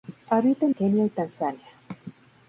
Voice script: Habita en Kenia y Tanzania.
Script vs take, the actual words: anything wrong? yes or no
no